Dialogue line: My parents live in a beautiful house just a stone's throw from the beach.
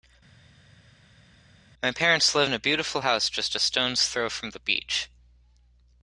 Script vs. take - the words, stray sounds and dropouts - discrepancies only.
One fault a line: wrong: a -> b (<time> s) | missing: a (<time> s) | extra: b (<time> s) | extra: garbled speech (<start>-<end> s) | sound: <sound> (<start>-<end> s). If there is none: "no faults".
no faults